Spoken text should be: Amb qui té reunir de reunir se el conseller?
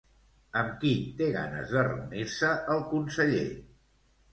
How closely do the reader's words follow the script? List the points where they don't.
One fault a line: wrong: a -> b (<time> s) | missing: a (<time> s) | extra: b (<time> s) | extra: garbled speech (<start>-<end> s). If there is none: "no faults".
wrong: reunir -> ganes (1.3 s)